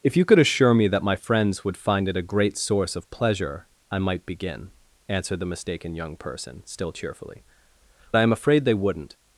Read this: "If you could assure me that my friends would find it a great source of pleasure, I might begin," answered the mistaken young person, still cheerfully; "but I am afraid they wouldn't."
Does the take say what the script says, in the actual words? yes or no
no